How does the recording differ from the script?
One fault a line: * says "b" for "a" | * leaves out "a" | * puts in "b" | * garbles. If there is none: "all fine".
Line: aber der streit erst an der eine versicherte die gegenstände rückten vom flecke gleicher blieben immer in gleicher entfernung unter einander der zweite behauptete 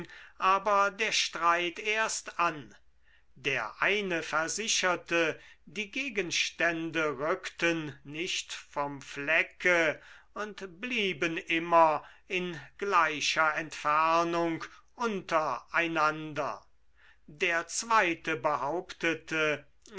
* puts in "nicht"
* says "und" for "gleicher"